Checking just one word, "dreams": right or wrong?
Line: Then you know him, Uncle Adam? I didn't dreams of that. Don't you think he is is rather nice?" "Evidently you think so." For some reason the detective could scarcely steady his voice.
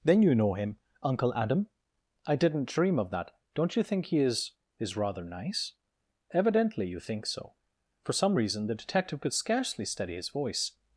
wrong